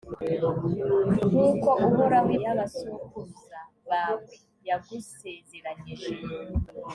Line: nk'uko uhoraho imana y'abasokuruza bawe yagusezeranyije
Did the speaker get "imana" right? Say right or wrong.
wrong